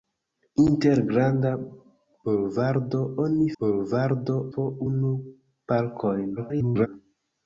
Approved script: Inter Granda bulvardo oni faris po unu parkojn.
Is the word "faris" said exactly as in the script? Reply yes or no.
no